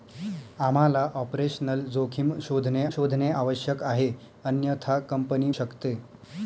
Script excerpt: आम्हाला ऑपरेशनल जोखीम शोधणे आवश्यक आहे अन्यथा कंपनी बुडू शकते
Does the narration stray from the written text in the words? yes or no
yes